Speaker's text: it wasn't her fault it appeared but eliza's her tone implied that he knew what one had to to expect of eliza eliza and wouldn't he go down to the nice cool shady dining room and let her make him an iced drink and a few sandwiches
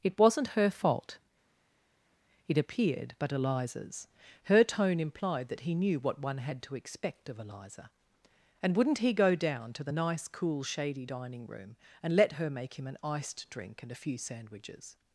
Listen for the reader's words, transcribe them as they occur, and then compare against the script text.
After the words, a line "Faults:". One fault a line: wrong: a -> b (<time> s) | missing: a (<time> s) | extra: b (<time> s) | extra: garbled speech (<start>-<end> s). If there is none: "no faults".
it wasn't her fault it appeared but eliza's her tone implied that he knew what one had to expect of eliza and wouldn't he go down to the nice cool shady dining room and let her make him an iced drink and a few sandwiches
Faults:
missing: to (6.8 s)
missing: eliza (7.9 s)